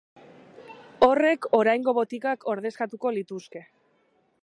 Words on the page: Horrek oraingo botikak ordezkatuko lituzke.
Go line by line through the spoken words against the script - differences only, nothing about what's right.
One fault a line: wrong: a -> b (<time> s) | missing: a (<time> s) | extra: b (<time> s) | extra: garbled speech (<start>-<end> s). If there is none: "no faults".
no faults